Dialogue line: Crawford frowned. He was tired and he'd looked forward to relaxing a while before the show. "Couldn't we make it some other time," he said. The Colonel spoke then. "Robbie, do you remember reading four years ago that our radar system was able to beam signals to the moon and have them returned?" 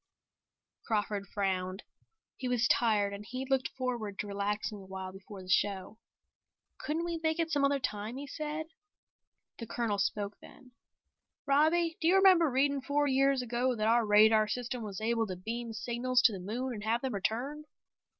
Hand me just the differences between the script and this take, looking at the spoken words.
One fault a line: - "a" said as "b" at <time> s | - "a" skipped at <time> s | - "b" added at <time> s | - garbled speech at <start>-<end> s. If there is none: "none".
none